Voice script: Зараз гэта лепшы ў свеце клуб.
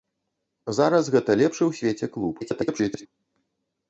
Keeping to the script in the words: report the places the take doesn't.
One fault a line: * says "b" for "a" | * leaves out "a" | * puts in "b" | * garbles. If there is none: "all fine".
* garbles